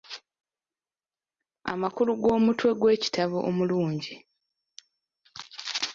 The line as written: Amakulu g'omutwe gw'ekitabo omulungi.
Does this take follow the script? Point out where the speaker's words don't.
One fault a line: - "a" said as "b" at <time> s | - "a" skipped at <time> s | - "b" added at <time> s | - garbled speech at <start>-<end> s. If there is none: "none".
none